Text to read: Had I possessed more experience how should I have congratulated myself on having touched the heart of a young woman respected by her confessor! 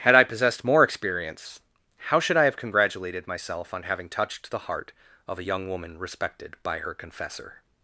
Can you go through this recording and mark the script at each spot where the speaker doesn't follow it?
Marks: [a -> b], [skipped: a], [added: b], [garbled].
Had I possessed more experience how should I have congratulated myself on having touched the heart of a young woman respected by her confessor!